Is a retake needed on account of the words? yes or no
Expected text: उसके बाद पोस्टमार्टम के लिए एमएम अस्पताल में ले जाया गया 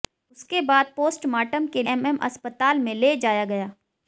yes